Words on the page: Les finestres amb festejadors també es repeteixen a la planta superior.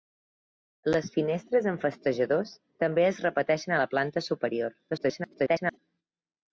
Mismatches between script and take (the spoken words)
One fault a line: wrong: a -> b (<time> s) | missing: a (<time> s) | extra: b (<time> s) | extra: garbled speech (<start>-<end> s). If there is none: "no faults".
extra: garbled speech (4.9-5.8 s)